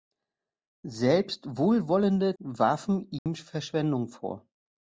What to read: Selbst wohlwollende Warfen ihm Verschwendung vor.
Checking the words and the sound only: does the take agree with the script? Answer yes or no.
no